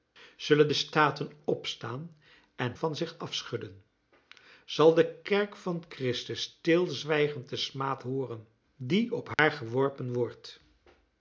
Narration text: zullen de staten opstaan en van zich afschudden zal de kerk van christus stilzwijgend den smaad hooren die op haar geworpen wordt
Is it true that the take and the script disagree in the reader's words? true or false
false